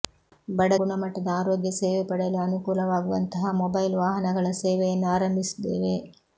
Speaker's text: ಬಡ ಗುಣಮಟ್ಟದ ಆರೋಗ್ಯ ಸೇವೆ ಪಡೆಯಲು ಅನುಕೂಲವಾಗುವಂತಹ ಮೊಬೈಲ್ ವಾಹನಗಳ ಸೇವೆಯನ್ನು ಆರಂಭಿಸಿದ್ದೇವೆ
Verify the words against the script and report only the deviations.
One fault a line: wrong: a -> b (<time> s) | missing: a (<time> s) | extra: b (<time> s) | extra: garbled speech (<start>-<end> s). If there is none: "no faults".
no faults